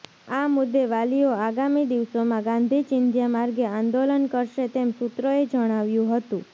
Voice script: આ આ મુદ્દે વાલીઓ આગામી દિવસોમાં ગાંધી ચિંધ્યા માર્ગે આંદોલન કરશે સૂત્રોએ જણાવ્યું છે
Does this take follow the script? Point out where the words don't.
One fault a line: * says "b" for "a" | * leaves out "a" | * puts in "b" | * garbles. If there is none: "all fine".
* leaves out "આ"
* puts in "તેમ"
* says "હતું" for "છે"